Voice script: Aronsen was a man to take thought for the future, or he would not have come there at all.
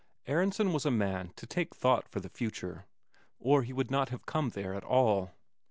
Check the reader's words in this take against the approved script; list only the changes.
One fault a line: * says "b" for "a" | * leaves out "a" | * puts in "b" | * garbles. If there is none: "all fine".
all fine